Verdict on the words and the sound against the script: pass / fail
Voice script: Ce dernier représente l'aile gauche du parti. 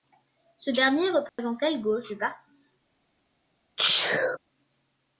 fail